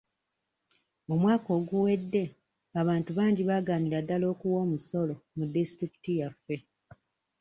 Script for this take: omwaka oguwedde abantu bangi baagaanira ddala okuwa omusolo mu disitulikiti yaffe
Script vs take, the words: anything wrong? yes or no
no